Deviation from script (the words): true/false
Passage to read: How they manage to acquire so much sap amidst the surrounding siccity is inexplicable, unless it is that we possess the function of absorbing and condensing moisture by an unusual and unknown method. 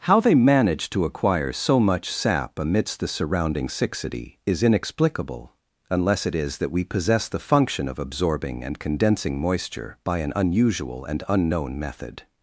false